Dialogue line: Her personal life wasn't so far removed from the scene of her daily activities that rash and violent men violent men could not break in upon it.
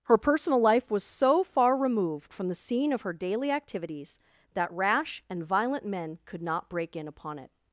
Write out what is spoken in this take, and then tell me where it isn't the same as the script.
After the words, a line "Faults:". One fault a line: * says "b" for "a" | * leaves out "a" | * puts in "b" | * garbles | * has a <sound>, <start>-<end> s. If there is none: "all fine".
Her personal life was so far removed from the scene of her daily activities that rash and violent men could not break in upon it.
Faults:
* says "was" for "wasn't"
* leaves out "violent men"